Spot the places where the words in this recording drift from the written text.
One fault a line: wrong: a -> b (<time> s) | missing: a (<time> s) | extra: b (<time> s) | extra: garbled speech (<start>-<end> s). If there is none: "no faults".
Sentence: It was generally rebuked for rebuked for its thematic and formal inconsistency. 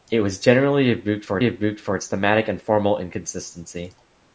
no faults